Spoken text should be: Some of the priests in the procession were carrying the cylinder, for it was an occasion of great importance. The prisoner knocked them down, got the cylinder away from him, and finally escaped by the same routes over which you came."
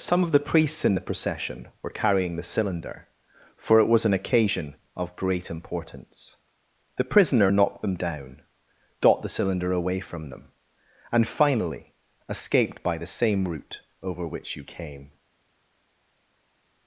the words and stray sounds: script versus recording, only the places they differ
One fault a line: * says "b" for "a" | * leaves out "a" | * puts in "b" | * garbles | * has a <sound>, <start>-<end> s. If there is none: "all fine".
* says "them" for "him"
* says "route" for "routes"